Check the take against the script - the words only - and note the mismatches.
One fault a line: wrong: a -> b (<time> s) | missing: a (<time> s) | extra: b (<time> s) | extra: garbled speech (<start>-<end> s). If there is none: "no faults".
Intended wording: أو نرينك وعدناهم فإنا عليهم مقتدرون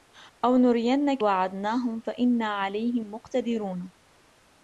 no faults